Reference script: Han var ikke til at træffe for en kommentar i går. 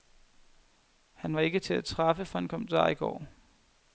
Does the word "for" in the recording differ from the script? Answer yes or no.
no